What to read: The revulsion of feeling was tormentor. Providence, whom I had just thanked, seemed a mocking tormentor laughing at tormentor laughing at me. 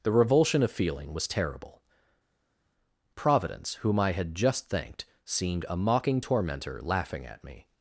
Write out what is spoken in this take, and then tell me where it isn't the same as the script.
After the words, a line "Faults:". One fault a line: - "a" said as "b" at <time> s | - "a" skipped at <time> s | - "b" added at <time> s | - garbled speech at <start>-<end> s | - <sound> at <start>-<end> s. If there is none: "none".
The revulsion of feeling was terrible. Providence, whom I had just thanked, seemed a mocking tormentor laughing at me.
Faults:
- "tormentor" said as "terrible" at 1.3 s
- "tormentor laughing at" skipped at 7.4 s